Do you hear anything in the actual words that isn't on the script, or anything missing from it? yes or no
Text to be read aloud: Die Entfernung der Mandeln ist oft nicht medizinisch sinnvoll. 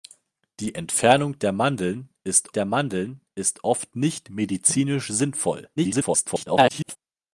yes